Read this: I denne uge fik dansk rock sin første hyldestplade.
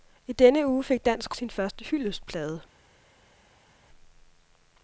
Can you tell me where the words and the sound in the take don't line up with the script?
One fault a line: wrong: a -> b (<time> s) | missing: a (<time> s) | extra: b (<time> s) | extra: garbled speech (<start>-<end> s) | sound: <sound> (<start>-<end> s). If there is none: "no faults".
missing: rock (1.4 s)